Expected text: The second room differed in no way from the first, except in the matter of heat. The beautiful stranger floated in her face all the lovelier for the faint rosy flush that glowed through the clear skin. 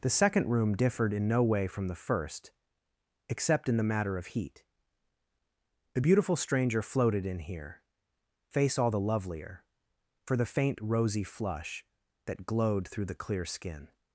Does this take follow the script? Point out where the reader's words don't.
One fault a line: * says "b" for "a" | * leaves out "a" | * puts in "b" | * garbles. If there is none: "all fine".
* says "here" for "her"